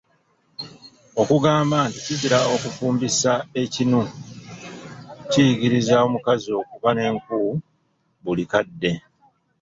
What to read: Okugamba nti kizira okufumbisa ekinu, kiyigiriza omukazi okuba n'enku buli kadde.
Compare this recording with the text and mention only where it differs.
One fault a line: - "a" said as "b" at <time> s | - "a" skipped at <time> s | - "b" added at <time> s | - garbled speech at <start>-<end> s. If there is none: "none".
none